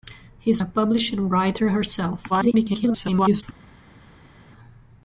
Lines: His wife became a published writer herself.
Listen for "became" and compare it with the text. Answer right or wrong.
wrong